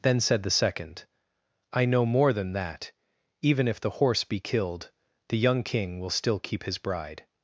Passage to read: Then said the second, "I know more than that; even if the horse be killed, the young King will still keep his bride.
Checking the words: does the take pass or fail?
pass